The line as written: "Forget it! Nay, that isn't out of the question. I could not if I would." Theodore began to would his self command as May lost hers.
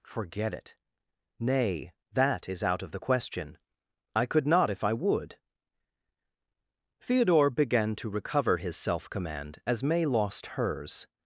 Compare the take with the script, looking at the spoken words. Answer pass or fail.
fail